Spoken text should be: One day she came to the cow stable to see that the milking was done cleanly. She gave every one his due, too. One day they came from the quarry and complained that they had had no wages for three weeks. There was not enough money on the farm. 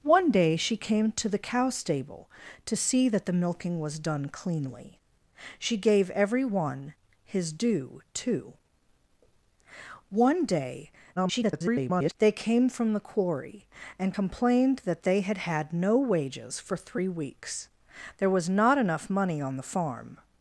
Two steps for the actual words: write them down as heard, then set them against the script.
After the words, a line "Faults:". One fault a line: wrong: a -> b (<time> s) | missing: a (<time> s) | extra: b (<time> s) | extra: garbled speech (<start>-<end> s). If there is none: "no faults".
One day she came to the cow stable to see that the milking was done cleanly. She gave every one his due, too. One day [garbled] they came from the quarry and complained that they had had no wages for three weeks. There was not enough money on the farm.
Faults:
extra: garbled speech (11.2-12.2 s)